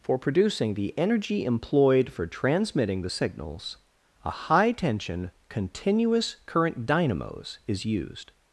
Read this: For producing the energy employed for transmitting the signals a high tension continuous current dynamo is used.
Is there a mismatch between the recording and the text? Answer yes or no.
yes